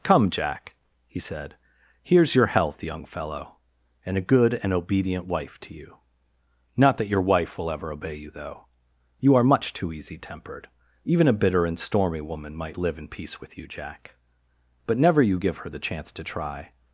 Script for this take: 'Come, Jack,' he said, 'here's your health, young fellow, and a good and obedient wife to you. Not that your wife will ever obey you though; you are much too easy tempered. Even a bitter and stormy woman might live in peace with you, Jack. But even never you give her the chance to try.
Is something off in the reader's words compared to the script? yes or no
yes